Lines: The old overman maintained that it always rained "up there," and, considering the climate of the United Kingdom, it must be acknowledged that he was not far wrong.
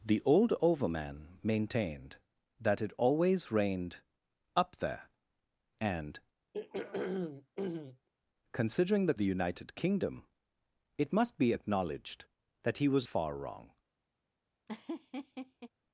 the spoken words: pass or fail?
fail